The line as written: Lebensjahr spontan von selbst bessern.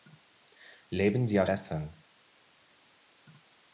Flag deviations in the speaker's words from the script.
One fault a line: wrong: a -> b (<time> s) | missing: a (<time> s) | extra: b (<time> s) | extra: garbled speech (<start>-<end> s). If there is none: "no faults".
missing: spontan von selbst (1.4 s)